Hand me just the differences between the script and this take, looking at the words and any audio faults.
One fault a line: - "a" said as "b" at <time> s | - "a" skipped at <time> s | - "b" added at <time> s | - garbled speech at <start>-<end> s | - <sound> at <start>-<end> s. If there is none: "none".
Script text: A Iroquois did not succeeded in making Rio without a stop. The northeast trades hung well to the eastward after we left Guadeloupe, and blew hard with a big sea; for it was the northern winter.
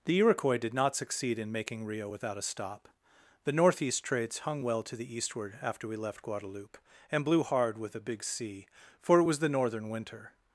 - "A" said as "The" at 0.1 s
- "succeeded" said as "succeed" at 0.9 s